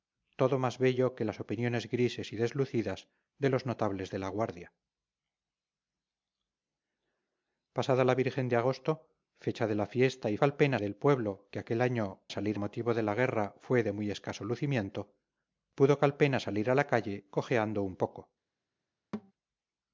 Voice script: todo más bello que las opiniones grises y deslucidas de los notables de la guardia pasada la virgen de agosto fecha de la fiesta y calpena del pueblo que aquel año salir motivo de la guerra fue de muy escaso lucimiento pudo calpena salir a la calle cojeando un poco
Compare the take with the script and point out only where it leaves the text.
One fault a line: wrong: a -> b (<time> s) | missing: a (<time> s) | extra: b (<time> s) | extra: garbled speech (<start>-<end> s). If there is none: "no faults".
no faults